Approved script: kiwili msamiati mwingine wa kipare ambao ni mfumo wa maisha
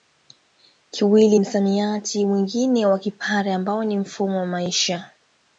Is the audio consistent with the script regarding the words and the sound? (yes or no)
yes